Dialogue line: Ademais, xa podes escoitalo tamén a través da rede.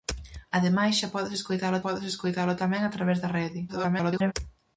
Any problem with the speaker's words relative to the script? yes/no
yes